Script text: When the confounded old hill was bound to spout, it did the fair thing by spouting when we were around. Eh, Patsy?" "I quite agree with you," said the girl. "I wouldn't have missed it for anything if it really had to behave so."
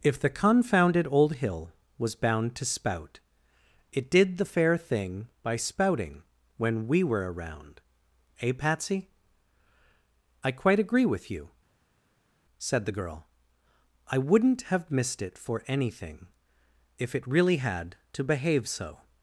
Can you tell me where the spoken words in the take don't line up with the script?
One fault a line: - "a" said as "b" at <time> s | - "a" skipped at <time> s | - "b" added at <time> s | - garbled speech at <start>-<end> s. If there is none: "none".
- "When" said as "If" at 0.0 s